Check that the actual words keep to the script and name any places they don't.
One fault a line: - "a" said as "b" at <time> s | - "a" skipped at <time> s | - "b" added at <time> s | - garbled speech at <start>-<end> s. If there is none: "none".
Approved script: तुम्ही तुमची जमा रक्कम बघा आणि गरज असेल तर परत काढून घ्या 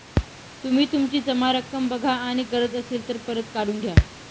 none